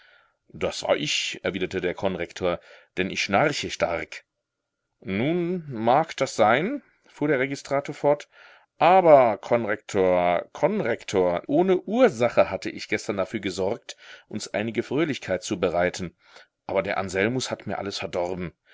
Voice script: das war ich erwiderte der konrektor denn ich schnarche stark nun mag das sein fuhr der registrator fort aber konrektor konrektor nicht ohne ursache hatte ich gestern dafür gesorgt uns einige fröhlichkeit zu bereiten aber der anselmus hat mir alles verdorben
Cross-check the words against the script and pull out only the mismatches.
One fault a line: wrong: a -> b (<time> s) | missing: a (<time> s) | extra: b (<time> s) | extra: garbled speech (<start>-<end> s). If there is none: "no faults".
missing: nicht (11.4 s)